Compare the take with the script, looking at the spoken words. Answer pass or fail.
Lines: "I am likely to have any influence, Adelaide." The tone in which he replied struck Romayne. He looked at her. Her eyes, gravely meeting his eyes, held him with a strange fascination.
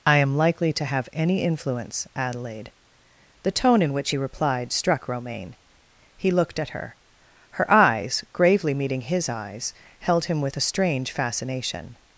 pass